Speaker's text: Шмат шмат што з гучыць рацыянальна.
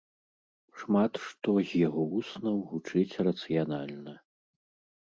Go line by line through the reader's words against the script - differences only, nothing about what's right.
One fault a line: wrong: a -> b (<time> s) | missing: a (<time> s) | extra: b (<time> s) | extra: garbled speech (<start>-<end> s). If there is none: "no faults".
missing: шмат (1.1 s)
extra: яго вуснаў (1.9 s)